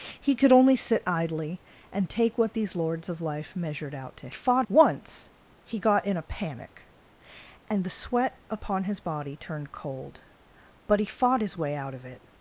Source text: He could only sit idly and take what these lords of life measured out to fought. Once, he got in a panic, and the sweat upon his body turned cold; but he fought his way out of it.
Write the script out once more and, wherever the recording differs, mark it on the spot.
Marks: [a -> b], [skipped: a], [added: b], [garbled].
He could only sit idly and take what these lords of life measured out to fought. Once, he got in a panic, and the sweat upon his body turned cold; but he fought his way out of it.